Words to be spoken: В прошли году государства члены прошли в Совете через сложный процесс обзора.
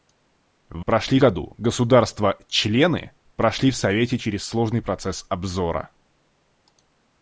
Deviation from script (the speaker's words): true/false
false